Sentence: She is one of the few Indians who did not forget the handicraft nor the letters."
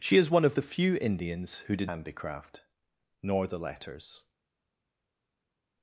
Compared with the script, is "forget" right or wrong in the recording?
wrong